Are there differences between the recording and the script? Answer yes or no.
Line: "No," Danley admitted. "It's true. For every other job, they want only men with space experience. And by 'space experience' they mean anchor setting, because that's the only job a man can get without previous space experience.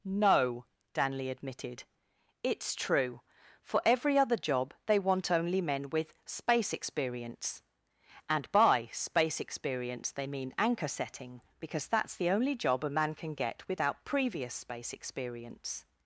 no